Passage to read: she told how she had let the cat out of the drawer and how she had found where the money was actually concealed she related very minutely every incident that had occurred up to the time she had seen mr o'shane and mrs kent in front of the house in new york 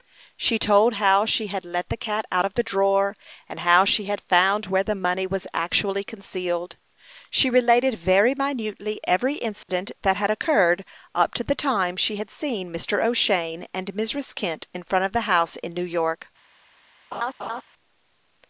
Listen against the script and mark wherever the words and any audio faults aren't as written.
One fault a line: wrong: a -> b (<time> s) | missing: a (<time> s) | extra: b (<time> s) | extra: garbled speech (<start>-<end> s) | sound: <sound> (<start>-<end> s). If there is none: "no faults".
sound: dropout (9.6-9.7 s)
sound: laugh (17.1-17.6 s)